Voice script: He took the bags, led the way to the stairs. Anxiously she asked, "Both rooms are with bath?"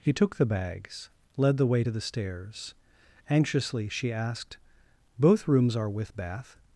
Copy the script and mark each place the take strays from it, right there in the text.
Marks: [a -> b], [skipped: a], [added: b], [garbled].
He took the bags, led the way to the stairs. Anxiously she asked, "Both rooms are with bath?"